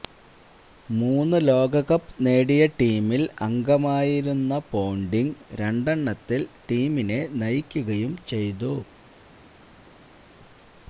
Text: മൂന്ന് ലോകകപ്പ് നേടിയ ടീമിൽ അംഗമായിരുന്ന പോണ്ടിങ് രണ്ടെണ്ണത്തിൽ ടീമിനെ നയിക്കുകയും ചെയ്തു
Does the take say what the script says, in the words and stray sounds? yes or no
yes